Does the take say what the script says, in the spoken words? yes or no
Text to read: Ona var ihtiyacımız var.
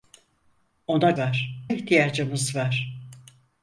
yes